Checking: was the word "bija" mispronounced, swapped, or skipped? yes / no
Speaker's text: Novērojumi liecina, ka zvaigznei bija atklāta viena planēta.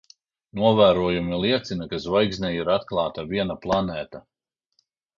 yes